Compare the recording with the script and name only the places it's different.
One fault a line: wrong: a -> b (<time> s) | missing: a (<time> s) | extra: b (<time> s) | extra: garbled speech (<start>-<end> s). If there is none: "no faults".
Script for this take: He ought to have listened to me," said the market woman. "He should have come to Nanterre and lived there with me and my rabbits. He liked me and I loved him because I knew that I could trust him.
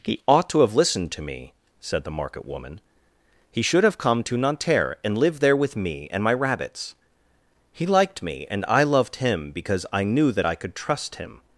no faults